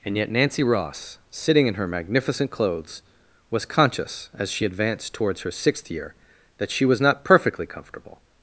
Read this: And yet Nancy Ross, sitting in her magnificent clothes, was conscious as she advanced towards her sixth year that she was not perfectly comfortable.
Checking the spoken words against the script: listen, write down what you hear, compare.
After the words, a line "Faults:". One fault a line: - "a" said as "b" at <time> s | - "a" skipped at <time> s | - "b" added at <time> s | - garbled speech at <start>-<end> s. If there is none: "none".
And yet Nancy Ross, sitting in her magnificent clothes, was conscious as she advanced towards her sixth year that she was not perfectly comfortable.
Faults:
none